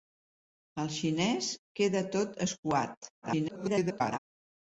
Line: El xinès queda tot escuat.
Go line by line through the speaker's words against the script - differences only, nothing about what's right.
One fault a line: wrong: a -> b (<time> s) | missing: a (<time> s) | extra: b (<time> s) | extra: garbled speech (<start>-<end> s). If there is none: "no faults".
extra: garbled speech (3.2-4.2 s)